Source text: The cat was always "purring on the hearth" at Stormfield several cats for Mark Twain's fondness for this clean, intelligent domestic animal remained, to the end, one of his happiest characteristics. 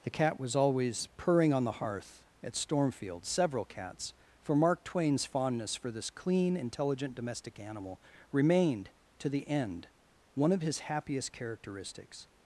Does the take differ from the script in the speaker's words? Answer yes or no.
no